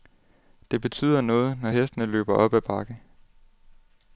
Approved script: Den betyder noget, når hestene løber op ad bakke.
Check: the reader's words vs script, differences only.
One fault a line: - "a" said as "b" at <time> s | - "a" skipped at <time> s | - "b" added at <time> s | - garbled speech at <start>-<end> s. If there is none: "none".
- "Den" said as "Det" at 0.7 s